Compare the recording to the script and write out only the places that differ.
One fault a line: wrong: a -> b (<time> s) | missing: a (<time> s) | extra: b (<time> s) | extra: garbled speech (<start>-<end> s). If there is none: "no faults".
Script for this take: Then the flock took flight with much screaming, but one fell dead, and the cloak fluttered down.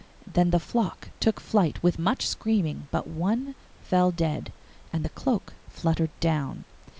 no faults